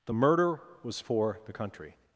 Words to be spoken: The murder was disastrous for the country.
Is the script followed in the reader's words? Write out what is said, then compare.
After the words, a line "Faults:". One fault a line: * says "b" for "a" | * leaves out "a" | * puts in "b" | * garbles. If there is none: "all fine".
The murder was for the country.
Faults:
* leaves out "disastrous"